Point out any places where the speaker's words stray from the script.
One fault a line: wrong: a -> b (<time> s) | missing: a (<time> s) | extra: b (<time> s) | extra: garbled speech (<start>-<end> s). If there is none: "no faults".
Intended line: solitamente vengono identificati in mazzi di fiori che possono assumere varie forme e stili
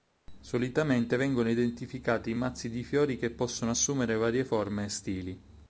no faults